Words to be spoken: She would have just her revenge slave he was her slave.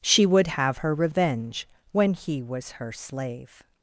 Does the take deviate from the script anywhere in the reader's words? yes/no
yes